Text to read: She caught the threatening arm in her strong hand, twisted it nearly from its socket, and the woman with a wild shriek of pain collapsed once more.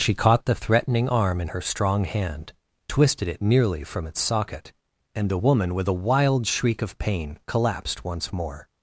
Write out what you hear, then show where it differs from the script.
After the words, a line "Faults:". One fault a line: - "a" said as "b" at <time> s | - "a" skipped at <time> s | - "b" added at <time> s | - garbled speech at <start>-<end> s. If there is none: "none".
She caught the threatening arm in her strong hand, twisted it nearly from its socket, and the woman with a wild shriek of pain collapsed once more.
Faults:
none